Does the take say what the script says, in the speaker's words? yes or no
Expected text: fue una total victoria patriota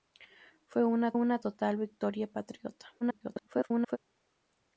no